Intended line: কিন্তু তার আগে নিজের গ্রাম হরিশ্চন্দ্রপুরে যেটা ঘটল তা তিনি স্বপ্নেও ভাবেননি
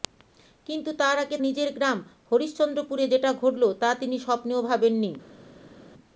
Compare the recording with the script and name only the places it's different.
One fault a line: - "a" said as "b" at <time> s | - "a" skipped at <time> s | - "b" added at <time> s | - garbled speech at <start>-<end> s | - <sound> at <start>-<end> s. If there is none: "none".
none